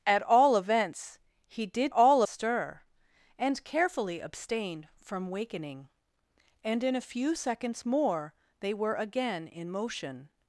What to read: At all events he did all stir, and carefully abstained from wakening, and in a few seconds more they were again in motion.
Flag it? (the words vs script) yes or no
no